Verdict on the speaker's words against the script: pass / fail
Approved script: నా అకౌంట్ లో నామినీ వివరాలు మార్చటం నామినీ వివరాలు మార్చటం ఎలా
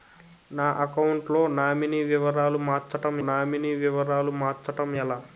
pass